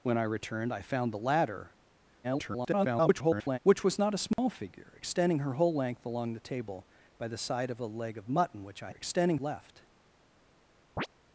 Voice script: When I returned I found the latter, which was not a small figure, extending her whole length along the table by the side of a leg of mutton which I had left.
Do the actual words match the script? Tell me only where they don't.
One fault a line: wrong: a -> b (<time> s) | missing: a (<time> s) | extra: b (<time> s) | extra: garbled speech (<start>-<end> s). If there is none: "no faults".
extra: garbled speech (2.2-3.6 s)
wrong: had -> extending (9.0 s)